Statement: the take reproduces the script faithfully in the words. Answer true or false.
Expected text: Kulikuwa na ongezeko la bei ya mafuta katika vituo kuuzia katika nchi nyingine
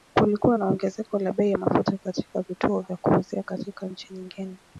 false